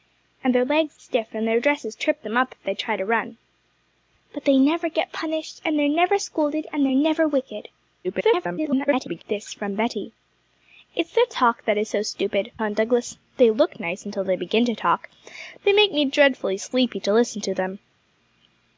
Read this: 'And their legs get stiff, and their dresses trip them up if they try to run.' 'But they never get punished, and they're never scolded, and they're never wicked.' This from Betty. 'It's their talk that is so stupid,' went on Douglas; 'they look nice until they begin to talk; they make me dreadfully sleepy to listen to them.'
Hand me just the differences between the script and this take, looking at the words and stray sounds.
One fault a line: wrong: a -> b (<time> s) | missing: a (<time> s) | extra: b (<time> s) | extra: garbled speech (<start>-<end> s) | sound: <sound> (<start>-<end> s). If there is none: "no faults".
missing: get (1.0 s)
extra: garbled speech (8.0-9.2 s)
missing: went (12.5 s)